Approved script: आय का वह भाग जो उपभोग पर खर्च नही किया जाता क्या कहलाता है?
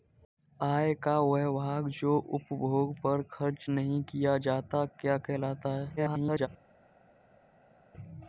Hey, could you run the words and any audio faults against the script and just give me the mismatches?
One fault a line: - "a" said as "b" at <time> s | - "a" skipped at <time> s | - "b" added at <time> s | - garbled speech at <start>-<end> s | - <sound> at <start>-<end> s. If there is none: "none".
- garbled speech at 6.0-6.5 s